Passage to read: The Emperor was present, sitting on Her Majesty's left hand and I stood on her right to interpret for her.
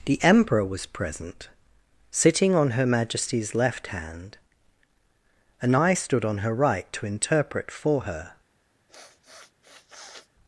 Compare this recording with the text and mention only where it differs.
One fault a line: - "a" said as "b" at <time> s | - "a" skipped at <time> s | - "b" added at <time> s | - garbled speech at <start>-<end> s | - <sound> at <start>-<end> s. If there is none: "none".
- sniff at 8.9-10.3 s